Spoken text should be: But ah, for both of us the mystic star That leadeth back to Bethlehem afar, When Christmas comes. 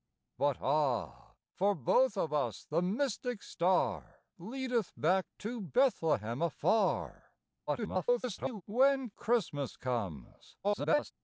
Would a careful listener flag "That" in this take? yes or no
yes